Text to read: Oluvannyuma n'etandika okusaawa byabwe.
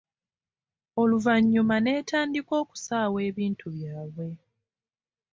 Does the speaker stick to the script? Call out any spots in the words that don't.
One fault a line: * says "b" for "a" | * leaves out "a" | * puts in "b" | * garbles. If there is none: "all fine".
* puts in "ebintu"